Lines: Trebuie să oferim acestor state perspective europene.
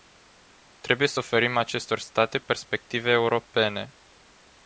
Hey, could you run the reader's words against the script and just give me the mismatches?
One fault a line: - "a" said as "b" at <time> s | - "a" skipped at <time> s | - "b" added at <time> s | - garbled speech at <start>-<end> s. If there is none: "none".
none